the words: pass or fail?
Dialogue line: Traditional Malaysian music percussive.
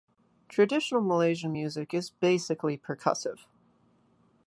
fail